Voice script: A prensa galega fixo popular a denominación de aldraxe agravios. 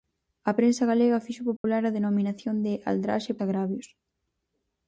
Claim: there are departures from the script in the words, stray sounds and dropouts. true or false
true